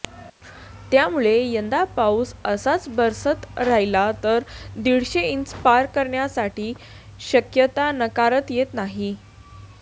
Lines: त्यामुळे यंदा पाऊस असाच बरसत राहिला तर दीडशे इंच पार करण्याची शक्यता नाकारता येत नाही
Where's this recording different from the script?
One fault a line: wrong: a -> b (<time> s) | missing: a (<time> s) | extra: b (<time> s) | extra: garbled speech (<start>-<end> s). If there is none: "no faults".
no faults